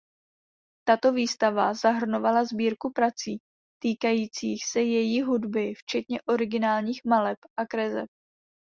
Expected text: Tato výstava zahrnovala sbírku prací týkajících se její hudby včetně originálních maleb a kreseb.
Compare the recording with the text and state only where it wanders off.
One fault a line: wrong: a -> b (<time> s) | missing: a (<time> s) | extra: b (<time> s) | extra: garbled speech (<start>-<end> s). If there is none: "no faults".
no faults